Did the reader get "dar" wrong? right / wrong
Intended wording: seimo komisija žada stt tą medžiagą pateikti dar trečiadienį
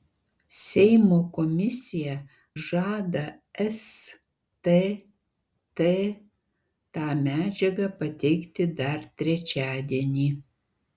right